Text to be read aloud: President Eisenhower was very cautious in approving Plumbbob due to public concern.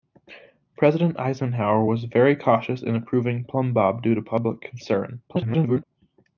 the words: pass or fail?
fail